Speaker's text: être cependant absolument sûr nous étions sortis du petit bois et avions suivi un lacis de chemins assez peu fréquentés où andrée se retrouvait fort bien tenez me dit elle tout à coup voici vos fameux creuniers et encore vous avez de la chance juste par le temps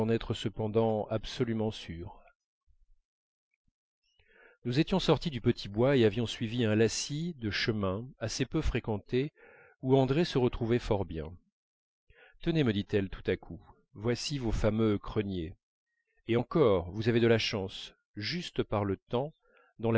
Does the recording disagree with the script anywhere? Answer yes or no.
no